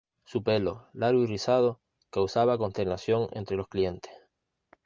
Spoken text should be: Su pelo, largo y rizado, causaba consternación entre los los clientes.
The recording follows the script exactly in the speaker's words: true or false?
false